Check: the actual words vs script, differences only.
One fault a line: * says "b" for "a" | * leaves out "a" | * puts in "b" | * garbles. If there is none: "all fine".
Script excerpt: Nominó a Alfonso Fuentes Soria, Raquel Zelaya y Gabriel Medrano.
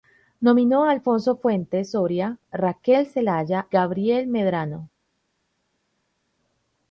* leaves out "y"